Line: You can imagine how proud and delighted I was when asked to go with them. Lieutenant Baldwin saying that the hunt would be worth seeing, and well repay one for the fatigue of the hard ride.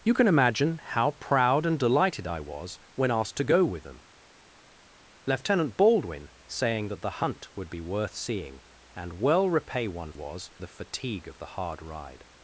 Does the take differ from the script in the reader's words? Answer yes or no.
yes